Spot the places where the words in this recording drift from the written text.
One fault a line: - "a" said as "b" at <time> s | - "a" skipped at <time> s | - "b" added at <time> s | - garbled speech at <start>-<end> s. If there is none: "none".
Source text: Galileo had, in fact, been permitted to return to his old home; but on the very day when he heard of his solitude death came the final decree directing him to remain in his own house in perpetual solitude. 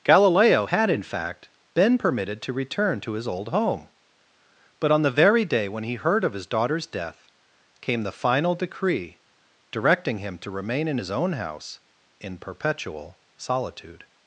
- "solitude" said as "daughter's" at 6.5 s